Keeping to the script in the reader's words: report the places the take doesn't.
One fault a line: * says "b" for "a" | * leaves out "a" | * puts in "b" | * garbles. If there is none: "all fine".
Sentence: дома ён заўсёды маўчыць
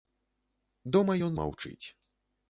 * leaves out "заўсёды"